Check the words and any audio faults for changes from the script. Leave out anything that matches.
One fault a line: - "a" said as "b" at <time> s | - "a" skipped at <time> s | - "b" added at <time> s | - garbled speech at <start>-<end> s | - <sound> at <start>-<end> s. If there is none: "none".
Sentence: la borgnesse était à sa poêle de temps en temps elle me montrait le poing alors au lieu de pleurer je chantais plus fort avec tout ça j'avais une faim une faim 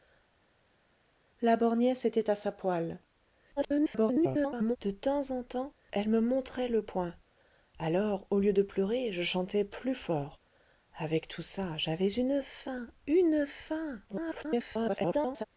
- garbled speech at 3.6-4.8 s
- garbled speech at 14.1-15.5 s